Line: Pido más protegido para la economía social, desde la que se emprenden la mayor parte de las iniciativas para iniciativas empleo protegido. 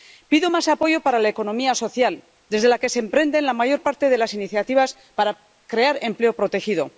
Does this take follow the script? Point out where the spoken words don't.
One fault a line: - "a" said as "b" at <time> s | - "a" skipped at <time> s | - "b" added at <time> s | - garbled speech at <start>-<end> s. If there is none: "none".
- "protegido" said as "apoyo" at 0.7 s
- "iniciativas" said as "crear" at 5.7 s